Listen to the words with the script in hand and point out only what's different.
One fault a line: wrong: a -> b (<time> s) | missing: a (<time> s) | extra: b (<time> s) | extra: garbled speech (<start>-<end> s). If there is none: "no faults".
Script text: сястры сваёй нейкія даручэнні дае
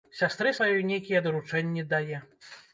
no faults